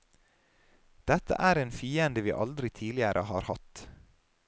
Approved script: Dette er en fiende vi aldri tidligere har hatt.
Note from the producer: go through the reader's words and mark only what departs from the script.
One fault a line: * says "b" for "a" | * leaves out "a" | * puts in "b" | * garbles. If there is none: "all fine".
all fine